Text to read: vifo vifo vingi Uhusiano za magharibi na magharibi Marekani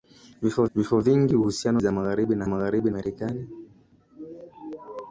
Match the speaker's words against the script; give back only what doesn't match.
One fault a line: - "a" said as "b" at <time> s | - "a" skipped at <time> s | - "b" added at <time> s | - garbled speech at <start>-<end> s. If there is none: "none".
none